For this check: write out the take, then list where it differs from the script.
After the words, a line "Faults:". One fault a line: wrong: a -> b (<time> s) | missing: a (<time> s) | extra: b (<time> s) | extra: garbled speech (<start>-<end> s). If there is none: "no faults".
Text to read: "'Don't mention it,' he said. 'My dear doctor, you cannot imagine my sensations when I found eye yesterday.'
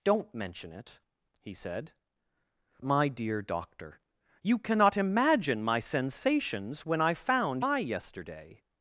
"'Don't mention it,' he said. 'My dear doctor, you cannot imagine my sensations when I found eye yesterday.'
Faults:
no faults